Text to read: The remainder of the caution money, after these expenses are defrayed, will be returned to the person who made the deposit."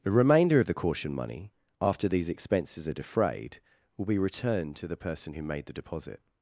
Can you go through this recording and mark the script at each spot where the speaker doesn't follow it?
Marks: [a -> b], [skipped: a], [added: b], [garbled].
The remainder of the caution money, after these expenses are defrayed, will be returned to the person who made the deposit."